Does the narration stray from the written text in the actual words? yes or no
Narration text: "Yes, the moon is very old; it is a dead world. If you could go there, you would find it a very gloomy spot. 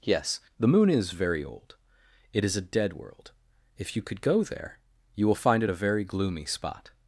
yes